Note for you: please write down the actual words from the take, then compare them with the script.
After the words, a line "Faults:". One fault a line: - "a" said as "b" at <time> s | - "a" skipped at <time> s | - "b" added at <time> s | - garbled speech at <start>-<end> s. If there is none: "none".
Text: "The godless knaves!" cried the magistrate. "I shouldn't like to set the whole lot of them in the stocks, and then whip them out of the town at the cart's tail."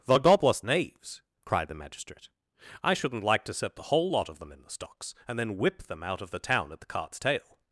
"The godless knaves!" cried the magistrate. "I shouldn't like to set the whole lot of them in the stocks, and then whip them out of the town at the cart's tail."
Faults:
none